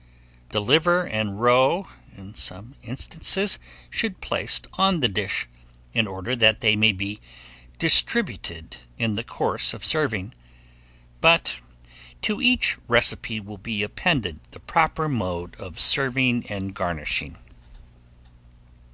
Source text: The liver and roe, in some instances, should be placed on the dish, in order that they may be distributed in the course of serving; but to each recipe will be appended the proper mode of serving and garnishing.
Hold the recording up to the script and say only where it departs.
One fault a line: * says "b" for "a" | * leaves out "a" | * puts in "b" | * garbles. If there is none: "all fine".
* leaves out "be"